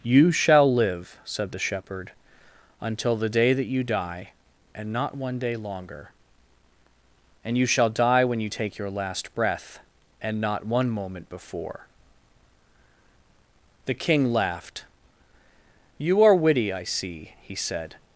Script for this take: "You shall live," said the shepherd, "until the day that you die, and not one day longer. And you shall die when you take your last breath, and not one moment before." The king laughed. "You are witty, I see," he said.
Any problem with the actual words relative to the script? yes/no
no